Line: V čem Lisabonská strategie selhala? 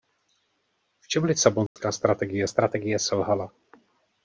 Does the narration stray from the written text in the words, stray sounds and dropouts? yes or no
yes